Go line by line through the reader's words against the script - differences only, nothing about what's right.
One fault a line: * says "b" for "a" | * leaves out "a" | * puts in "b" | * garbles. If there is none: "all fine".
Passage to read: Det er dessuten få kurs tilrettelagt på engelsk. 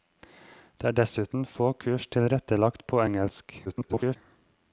* garbles